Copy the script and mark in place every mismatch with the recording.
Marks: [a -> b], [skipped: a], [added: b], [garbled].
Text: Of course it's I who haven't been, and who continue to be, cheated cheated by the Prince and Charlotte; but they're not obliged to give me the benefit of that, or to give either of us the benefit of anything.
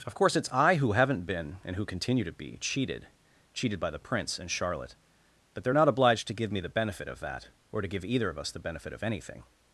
Of course it's I who haven't been, and who continue to be, cheated cheated by the Prince and Charlotte; but they're not obliged to give me the benefit of that, or to give either of us the benefit of anything.